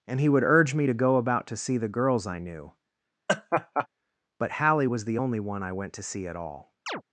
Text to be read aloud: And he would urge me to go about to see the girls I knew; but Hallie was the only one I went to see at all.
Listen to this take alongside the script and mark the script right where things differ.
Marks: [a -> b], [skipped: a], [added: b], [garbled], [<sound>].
And he would urge me to go about to see the girls I knew; [laugh] but Hallie was the only one I went to see at all. [chirp]